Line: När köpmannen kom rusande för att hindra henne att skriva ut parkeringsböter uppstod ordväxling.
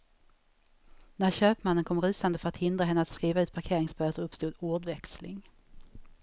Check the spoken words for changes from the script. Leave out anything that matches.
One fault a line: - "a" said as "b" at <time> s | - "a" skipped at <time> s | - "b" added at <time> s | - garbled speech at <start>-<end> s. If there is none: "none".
none